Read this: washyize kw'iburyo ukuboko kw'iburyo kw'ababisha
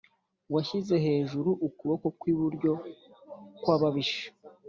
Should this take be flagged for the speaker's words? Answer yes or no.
yes